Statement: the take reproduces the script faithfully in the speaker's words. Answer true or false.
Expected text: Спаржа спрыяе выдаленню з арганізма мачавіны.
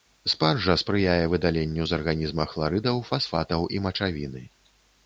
false